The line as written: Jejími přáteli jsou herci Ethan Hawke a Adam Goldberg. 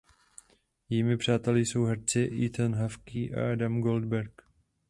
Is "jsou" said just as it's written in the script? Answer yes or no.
yes